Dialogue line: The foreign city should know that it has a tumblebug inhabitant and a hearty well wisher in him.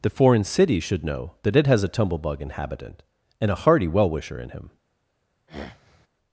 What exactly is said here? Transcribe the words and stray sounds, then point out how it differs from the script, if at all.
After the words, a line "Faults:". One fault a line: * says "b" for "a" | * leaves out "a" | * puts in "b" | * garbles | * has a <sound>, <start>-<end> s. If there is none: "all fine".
The foreign city should know that it has a tumblebug inhabitant and a hearty well wisher in him.
Faults:
* has a throat clearing, 5.5-6.1 s